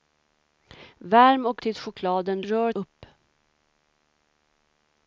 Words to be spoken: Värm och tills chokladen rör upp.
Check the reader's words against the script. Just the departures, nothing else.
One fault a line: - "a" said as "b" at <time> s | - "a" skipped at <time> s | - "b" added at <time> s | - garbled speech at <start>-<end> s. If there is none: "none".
none